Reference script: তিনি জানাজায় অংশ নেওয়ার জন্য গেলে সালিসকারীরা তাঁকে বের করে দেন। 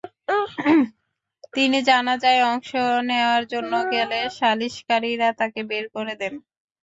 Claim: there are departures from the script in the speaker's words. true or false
false